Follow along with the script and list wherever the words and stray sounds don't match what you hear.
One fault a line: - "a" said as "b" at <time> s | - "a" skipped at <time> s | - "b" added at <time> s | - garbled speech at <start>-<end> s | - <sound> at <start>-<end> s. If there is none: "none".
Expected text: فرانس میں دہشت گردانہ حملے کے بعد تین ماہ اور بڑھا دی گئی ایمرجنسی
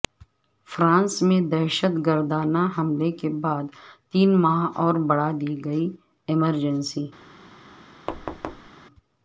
- thud at 8.1-8.7 s